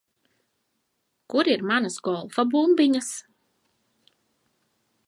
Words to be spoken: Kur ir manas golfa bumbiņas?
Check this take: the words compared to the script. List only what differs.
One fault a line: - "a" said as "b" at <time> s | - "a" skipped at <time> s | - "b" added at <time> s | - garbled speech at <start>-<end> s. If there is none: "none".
none